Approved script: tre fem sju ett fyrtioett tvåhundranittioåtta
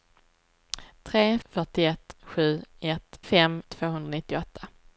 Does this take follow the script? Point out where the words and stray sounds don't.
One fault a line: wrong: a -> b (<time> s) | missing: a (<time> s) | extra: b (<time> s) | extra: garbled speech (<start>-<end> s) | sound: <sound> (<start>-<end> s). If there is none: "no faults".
wrong: fem -> fyrtioett (1.4 s)
wrong: fyrtioett -> fem (3.2 s)